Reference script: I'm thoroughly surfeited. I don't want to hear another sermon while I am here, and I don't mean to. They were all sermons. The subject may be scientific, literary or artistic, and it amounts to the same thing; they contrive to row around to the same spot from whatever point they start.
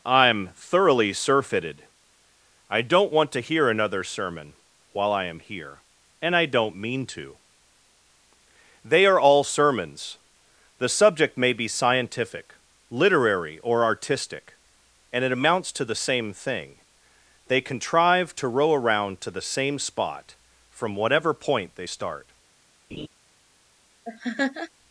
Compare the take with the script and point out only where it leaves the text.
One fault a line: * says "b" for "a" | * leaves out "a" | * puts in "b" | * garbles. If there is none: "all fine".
* says "are" for "were"